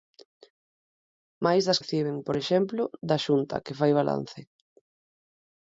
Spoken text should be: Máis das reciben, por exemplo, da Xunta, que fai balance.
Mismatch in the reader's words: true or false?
false